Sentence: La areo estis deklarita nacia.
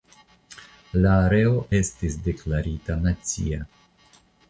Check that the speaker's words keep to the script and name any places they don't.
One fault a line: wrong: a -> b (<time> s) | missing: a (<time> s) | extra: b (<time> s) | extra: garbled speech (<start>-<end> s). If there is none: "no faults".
no faults